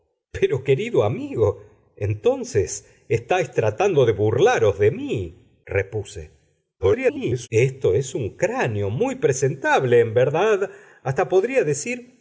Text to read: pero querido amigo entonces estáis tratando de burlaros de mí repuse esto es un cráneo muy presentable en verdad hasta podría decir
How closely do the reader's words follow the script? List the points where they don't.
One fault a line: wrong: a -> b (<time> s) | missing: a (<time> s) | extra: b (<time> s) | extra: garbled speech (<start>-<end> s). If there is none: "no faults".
extra: garbled speech (6.8-7.5 s)